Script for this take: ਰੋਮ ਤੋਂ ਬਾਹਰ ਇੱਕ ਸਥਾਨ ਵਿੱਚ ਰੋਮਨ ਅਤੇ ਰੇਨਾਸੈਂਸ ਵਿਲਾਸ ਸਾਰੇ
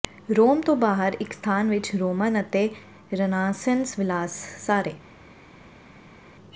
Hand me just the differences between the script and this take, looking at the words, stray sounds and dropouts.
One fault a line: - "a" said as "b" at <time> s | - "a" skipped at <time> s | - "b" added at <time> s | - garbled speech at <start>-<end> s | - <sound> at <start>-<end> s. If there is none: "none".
none